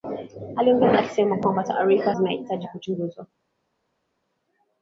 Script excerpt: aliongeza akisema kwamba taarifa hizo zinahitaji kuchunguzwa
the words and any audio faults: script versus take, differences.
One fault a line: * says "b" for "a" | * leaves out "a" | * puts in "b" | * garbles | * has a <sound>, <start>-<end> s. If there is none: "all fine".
* leaves out "hizo"